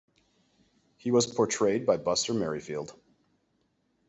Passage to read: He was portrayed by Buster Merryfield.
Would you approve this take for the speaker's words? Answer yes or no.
yes